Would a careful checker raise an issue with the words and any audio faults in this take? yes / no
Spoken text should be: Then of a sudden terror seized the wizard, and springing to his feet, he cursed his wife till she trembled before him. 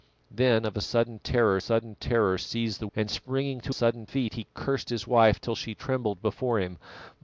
yes